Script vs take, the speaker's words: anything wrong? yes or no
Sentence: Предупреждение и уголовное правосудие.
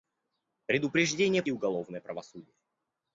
no